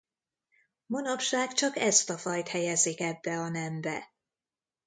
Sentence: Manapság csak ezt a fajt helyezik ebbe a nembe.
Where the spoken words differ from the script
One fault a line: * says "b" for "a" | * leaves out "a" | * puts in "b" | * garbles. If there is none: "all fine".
all fine